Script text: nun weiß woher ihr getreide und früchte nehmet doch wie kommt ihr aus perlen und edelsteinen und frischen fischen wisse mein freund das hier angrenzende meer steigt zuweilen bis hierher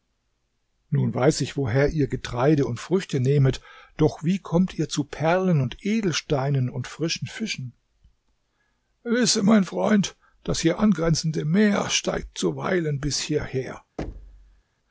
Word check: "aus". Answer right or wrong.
wrong